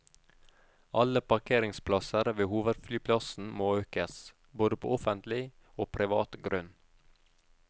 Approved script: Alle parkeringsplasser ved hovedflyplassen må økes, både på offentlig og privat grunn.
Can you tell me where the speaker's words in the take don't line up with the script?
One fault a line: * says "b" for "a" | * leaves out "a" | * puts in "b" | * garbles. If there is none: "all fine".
all fine